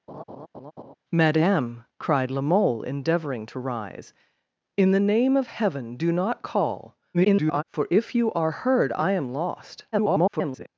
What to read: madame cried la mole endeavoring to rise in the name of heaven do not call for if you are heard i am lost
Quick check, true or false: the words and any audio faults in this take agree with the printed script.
false